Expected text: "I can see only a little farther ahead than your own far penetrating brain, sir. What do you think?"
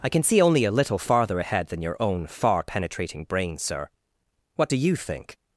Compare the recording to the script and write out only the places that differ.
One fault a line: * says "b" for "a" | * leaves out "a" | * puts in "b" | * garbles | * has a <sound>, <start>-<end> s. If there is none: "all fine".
all fine